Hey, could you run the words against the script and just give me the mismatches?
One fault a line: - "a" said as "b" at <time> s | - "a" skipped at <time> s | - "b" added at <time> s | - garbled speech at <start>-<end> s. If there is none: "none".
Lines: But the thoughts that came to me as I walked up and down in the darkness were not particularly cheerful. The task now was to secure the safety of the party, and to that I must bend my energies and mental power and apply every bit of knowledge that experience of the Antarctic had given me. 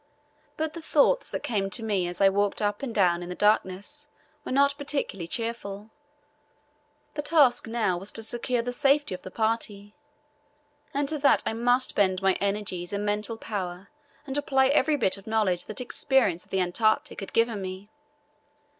none